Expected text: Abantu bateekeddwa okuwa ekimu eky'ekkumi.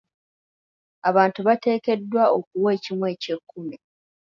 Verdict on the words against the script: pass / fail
pass